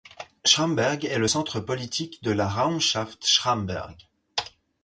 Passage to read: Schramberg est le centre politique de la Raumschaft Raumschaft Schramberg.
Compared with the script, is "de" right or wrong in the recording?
right